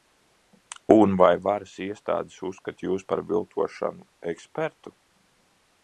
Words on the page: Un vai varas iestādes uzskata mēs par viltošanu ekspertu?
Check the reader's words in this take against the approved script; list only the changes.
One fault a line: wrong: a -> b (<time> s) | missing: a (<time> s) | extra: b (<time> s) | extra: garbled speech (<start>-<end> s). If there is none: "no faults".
wrong: mēs -> jūs (2.9 s)